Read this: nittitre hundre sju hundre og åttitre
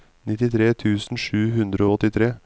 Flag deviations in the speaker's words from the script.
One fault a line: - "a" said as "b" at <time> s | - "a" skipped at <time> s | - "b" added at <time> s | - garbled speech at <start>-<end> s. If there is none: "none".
- "hundre" said as "tusen" at 0.7 s